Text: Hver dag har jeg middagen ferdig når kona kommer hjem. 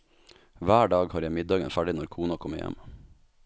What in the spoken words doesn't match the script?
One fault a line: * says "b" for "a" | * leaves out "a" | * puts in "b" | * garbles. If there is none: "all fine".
all fine